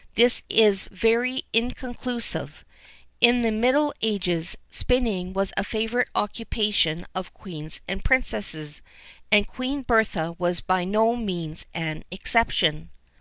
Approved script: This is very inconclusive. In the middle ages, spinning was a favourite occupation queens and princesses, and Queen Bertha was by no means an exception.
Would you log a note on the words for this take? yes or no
yes